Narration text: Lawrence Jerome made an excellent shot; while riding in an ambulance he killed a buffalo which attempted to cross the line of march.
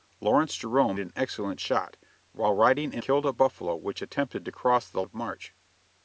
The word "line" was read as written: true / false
false